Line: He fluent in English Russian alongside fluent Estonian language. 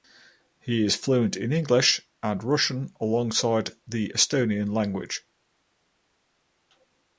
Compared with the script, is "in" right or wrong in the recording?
right